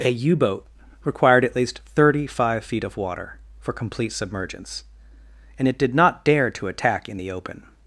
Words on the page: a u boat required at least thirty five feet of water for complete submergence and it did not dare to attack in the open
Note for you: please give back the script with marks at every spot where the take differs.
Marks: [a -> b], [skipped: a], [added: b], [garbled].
a u boat required at least thirty five feet of water for complete submergence and it did not dare to attack in the open